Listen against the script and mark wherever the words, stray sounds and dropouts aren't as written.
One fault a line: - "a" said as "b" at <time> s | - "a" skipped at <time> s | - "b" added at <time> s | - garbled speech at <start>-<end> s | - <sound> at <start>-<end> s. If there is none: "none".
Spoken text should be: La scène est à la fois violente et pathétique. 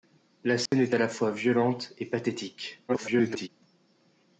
- dropout at 0.7-0.7 s
- garbled speech at 2.9-3.5 s